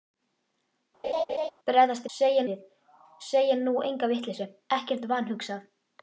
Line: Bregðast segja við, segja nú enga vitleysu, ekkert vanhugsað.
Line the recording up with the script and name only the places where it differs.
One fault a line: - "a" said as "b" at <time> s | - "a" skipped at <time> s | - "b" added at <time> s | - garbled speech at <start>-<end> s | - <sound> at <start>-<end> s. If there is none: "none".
- laugh at 1.0-1.5 s